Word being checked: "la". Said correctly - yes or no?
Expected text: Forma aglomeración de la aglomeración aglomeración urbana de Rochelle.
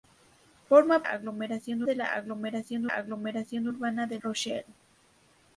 yes